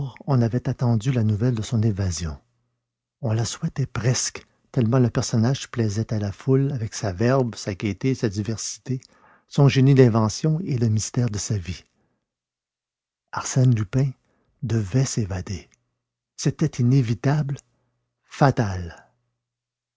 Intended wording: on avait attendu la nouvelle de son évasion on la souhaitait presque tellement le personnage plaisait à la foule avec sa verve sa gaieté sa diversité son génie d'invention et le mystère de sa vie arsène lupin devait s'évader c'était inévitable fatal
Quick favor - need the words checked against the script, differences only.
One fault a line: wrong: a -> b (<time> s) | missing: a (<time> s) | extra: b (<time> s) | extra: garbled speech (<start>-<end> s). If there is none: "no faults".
no faults